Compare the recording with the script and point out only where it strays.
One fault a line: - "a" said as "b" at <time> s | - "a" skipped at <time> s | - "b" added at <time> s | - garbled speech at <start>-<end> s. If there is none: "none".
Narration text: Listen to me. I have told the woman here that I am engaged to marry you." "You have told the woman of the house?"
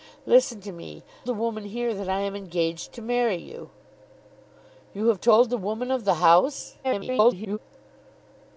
- "I have told" skipped at 1.0 s
- garbled speech at 6.8-7.6 s